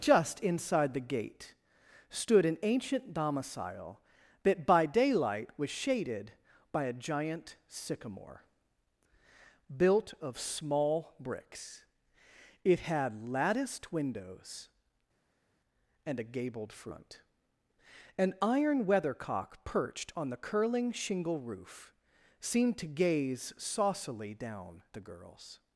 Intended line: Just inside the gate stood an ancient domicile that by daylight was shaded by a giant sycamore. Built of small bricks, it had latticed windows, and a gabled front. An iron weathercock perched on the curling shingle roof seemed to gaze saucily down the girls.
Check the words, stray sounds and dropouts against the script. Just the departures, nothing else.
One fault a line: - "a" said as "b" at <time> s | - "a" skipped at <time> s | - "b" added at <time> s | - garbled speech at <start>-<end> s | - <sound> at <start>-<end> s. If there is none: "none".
none